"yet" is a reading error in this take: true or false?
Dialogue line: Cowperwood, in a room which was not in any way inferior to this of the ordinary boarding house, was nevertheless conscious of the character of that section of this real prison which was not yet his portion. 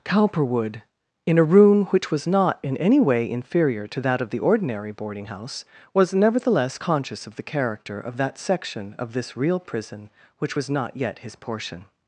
false